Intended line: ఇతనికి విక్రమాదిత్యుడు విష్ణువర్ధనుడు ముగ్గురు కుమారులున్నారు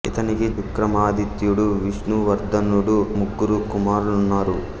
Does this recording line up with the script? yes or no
yes